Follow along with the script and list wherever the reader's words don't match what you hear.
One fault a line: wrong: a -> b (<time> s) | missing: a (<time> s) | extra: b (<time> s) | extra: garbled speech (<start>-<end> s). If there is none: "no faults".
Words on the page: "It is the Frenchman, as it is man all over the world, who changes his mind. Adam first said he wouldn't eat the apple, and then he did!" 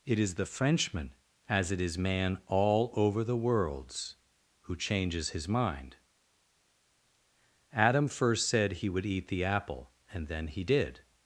wrong: world -> worlds (3.4 s)
wrong: wouldn't -> would (8.9 s)